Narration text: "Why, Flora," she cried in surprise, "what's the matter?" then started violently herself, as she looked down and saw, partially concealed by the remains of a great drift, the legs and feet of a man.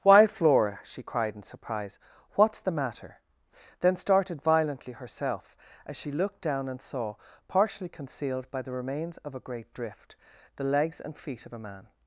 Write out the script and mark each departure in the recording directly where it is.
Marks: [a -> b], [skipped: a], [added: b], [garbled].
"Why, Flora," she cried in surprise, "what's the matter?" then started violently herself, as she looked down and saw, partially concealed by the remains of a great drift, the legs and feet of a man.